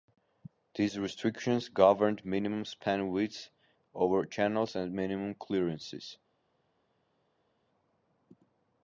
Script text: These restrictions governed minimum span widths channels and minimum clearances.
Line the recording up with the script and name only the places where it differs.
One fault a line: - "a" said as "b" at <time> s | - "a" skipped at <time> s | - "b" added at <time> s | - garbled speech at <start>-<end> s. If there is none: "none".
- "over" added at 3.9 s